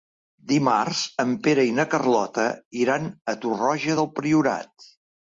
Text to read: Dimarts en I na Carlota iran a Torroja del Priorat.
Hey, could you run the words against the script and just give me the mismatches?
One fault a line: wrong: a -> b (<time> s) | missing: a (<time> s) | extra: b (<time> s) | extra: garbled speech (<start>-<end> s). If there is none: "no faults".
extra: Pere (1.5 s)